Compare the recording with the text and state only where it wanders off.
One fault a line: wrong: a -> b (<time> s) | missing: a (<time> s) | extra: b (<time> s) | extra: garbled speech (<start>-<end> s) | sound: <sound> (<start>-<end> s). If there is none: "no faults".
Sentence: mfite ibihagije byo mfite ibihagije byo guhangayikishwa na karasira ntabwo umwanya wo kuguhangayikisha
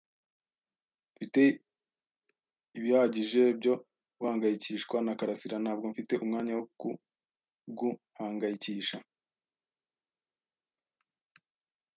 missing: mfite ibihagije byo (3.7 s)
extra: mfite (5.9 s)